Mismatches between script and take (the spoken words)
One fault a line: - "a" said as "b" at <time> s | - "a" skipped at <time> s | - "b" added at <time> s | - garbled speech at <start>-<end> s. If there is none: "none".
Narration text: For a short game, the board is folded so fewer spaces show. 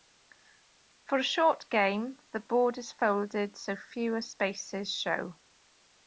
none